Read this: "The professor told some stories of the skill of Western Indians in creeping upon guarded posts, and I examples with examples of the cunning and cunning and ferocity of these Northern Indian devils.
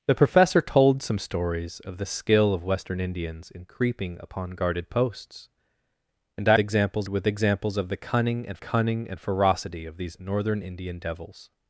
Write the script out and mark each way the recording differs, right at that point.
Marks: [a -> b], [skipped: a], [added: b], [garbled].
"The professor told some stories of the skill of Western Indians in creeping upon guarded posts, and I examples with examples of the cunning and cunning and ferocity of these Northern Indian devils.